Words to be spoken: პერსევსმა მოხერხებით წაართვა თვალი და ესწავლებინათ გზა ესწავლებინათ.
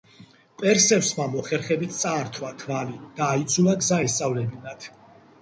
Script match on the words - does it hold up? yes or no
no